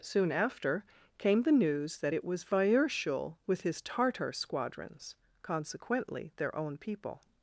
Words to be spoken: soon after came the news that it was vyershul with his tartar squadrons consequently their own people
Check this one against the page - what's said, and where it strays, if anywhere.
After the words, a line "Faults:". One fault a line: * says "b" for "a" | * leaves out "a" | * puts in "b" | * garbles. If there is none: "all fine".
soon after came the news that it was vyershul with his tartar squadrons consequently their own people
Faults:
all fine